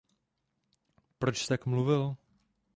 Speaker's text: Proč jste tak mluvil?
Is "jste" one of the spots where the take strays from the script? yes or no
yes